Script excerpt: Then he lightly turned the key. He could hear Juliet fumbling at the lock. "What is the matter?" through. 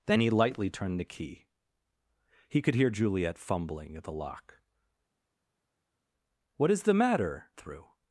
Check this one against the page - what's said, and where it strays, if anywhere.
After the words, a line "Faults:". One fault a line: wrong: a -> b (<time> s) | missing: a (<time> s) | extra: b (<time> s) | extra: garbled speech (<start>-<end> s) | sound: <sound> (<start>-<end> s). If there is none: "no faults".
Then he lightly turned the key. He could hear Juliet fumbling at the lock. "What is the matter?" through.
Faults:
no faults